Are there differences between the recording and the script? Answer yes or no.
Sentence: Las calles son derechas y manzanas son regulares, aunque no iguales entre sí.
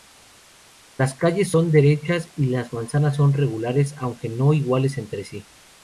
yes